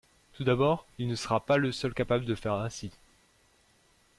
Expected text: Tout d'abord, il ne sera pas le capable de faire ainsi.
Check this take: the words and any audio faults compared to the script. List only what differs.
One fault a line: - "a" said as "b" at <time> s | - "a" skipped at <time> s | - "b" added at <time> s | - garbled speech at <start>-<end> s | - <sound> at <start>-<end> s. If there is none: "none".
- "seul" added at 1.7 s